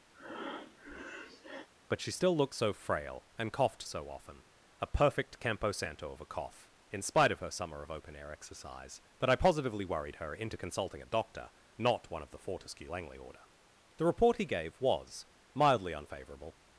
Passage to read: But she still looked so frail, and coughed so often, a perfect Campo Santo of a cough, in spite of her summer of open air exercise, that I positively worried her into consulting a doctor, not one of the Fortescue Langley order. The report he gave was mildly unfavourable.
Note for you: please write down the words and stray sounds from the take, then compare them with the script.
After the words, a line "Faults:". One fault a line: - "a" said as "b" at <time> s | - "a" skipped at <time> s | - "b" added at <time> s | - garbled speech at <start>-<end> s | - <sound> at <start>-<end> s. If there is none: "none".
But she still looked so frail, and coughed so often, a perfect Campo Santo of a cough, in spite of her summer of open air exercise, that I positively worried her into consulting a doctor, not one of the Fortescue Langley order. The report he gave was mildly unfavourable.
Faults:
- breath at 0.1-1.7 s